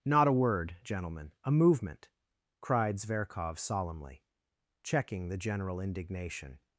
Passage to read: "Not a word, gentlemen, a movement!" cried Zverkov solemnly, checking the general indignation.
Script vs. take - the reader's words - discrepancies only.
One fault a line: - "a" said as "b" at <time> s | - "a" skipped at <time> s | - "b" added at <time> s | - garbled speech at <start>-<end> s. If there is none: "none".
none